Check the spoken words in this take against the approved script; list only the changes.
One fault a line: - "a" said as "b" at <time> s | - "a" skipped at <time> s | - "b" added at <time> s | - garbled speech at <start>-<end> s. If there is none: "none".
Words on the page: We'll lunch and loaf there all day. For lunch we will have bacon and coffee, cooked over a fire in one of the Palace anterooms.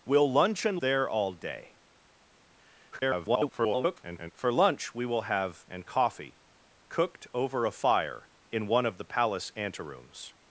- "loaf" skipped at 0.8 s
- garbled speech at 2.9-4.3 s
- "bacon" skipped at 5.6 s